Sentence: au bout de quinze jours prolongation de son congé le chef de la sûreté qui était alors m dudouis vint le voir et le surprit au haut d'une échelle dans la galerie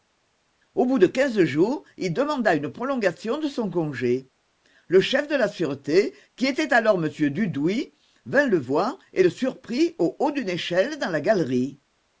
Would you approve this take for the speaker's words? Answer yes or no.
no